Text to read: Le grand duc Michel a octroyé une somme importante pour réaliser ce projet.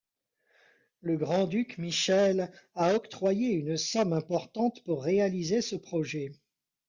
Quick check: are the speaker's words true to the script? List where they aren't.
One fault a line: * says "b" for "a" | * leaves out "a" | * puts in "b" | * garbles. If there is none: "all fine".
all fine